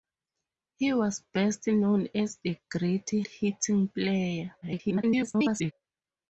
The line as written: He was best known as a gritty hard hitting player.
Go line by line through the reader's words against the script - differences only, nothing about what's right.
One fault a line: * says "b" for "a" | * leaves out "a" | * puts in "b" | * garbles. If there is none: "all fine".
* leaves out "hard"
* garbles